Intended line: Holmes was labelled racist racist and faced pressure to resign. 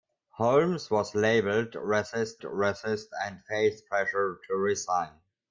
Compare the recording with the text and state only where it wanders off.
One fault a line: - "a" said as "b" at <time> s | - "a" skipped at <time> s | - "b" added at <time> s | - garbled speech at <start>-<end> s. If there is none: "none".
none